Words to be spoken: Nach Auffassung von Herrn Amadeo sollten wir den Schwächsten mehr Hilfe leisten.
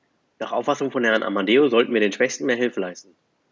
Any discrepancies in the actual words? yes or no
no